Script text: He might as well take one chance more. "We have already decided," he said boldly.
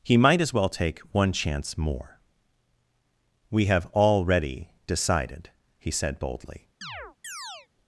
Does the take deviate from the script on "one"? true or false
false